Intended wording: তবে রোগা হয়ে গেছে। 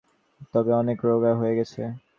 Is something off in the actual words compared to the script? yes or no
yes